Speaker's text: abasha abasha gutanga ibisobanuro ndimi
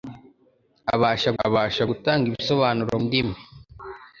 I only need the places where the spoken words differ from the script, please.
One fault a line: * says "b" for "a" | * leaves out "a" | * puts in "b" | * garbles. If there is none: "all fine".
all fine